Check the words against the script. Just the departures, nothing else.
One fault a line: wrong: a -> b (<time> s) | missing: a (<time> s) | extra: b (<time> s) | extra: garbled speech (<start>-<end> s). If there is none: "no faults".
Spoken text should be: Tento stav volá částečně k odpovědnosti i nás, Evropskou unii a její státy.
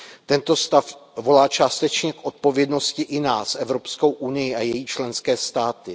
extra: členské (4.9 s)